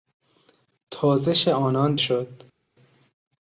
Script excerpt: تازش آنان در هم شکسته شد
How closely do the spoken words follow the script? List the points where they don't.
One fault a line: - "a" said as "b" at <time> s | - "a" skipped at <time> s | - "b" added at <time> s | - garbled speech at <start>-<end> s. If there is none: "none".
- "در هم شکسته" skipped at 1.9 s